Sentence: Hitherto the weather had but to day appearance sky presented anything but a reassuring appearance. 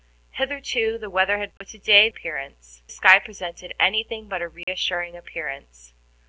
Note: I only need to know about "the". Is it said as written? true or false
true